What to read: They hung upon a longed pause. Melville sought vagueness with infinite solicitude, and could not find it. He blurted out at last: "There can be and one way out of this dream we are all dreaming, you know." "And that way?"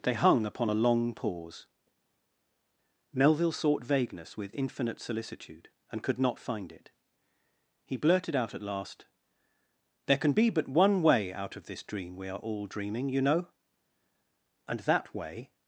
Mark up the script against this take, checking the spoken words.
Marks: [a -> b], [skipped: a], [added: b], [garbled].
They hung upon a [longed -> long] pause. Melville sought vagueness with infinite solicitude, and could not find it. He blurted out at last: "There can be [and -> but] one way out of this dream we are all dreaming, you know." "And that way?"